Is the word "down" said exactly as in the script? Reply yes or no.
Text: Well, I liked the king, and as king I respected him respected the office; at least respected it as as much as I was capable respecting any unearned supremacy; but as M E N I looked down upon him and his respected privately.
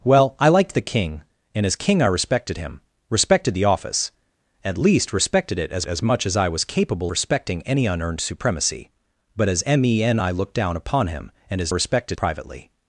yes